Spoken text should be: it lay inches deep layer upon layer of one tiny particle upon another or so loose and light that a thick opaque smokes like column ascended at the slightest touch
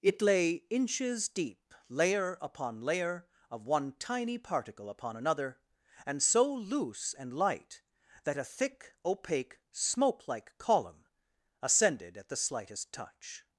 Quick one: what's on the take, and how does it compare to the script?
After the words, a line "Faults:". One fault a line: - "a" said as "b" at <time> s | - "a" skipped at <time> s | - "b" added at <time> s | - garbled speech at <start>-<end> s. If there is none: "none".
it lay inches deep layer upon layer of one tiny particle upon another and so loose and light that a thick opaque smoke like column ascended at the slightest touch
Faults:
- "or" said as "and" at 6.1 s
- "smokes" said as "smoke" at 9.7 s